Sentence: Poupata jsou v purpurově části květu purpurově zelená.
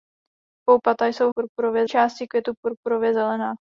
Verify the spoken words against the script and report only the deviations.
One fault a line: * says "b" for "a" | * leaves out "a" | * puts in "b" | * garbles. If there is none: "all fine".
all fine